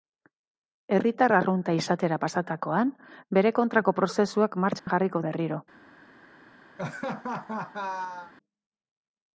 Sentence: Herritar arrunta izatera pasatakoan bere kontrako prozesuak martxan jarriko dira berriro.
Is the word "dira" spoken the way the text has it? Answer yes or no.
no